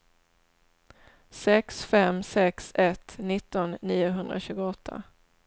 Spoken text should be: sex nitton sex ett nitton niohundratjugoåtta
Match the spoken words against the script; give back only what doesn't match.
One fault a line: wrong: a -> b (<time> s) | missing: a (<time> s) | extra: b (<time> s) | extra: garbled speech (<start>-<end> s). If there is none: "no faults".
wrong: nitton -> fem (1.9 s)